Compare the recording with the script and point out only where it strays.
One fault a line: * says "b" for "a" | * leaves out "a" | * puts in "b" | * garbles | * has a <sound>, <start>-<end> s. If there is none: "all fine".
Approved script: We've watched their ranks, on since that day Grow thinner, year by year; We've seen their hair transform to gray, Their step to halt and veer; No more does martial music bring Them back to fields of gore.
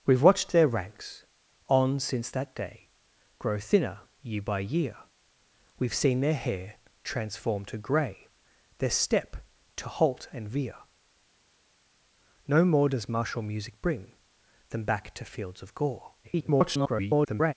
* garbles